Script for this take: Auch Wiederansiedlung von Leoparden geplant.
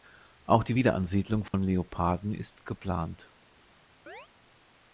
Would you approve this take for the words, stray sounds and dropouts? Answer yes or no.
no